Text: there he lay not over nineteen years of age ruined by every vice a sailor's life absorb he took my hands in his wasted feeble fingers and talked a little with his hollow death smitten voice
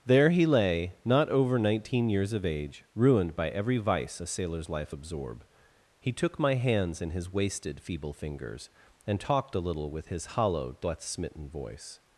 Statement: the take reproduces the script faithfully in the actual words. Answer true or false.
true